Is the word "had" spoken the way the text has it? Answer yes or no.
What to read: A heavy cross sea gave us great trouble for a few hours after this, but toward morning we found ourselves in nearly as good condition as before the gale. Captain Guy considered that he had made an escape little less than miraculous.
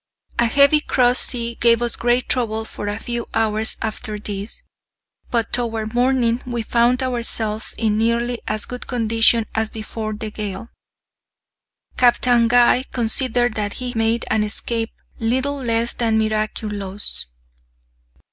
no